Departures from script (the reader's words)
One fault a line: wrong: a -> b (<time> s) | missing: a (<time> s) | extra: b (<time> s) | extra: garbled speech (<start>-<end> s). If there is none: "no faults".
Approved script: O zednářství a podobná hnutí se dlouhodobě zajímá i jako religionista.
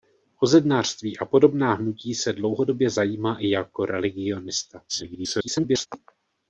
extra: garbled speech (4.9-5.9 s)